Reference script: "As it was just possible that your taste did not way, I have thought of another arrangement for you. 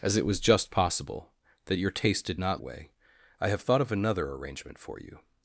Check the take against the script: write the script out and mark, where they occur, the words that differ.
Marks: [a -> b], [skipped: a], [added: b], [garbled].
"As it was just possible that your taste did not way, I have thought of another arrangement for you.